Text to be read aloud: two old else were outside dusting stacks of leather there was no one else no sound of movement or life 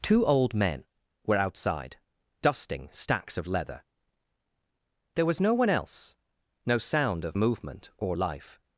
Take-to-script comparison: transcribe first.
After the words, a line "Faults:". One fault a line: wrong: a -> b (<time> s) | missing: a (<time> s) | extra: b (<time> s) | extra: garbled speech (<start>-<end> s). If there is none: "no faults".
two old men were outside dusting stacks of leather there was no one else no sound of movement or life
Faults:
wrong: else -> men (0.6 s)